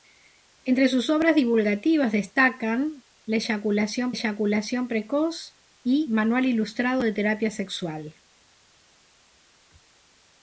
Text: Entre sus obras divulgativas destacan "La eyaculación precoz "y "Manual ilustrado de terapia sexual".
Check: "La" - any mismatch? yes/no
no